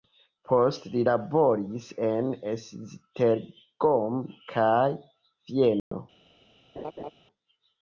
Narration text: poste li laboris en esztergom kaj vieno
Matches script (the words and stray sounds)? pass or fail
fail